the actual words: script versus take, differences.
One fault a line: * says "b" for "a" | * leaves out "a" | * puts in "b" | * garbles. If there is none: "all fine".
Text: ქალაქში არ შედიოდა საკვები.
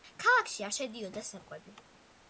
all fine